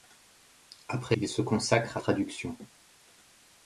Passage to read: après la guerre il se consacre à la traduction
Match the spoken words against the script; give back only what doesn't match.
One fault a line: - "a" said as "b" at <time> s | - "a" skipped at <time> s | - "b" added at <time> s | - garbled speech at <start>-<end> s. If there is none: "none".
- "la guerre" skipped at 1.1 s
- "la" skipped at 2.0 s